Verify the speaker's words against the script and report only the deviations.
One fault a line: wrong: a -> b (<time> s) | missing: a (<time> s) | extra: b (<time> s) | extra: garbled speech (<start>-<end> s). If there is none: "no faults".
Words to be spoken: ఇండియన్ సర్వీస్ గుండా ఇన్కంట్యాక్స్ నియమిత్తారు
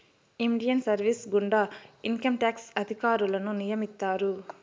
extra: అధికారులను (2.8 s)